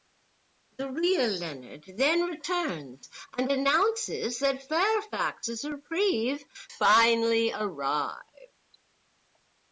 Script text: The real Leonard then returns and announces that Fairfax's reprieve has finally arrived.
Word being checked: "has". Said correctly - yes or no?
no